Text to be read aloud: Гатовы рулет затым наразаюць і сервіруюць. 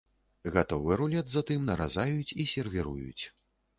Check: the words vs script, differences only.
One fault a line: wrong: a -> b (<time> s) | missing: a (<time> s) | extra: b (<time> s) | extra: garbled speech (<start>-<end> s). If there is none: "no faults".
no faults